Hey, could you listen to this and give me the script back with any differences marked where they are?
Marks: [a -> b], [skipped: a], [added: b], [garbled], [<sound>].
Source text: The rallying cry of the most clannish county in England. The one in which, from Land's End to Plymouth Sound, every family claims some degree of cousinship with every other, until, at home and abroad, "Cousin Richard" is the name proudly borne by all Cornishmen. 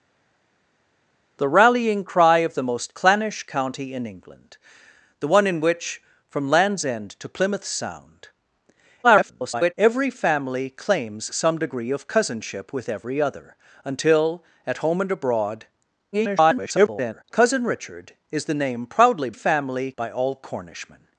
The rallying cry of the most clannish county in England. The one in which, from Land's End to Plymouth Sound, [garbled] every family claims some degree of cousinship with every other, until, at home and abroad, [garbled] "Cousin Richard" is the name proudly [borne -> family] by all Cornishmen.